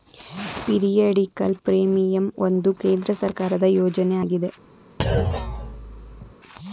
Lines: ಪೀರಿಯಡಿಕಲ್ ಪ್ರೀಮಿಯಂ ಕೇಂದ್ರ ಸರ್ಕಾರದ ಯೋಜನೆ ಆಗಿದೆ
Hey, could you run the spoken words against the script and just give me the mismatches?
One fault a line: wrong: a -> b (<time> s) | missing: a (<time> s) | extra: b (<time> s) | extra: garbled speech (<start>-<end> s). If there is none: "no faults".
extra: ಒಂದು (2.5 s)